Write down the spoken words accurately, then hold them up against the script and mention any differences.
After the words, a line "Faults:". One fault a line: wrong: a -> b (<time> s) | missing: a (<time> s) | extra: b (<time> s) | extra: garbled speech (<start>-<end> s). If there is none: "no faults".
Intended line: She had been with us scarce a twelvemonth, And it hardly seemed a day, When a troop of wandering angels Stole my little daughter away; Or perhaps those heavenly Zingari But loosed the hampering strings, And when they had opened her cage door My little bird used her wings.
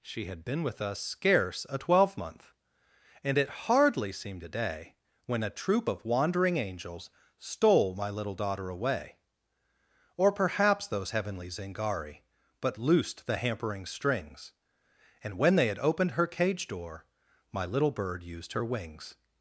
She had been with us scarce a twelvemonth, And it hardly seemed a day, When a troop of wandering angels Stole my little daughter away; Or perhaps those heavenly Zingari But loosed the hampering strings, And when they had opened her cage door My little bird used her wings.
Faults:
no faults